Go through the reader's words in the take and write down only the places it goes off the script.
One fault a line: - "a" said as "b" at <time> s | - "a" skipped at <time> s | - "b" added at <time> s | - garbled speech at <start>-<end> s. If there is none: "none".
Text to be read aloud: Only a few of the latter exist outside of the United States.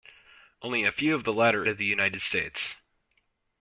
- "exist outside" skipped at 1.6 s